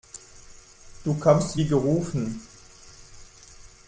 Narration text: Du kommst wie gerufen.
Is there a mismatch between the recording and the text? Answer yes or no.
no